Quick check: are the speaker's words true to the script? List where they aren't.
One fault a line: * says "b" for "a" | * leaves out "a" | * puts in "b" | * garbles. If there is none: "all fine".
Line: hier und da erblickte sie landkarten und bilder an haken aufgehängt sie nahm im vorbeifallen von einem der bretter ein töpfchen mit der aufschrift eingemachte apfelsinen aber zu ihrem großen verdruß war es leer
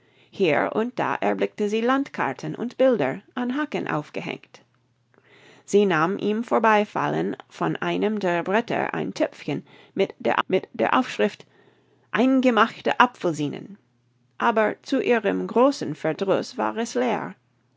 * puts in "mit der"